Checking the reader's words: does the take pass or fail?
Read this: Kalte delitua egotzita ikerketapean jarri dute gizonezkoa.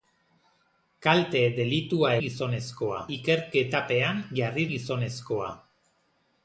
fail